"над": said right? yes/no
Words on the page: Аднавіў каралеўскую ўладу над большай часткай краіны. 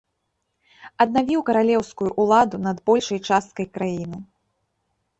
yes